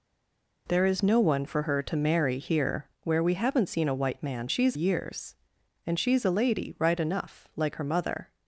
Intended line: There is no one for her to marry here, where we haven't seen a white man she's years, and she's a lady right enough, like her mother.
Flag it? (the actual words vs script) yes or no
no